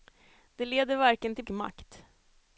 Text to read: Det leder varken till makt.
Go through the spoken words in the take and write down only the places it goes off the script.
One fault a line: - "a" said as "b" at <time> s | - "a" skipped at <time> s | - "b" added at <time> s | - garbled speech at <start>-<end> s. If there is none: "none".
none